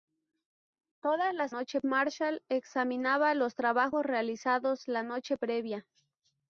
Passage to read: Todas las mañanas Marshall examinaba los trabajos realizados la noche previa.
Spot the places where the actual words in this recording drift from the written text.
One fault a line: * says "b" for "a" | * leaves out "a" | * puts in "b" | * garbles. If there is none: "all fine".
* says "noche" for "mañanas"